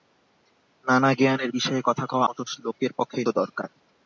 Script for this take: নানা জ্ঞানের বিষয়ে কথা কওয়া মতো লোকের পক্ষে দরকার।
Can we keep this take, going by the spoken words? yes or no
yes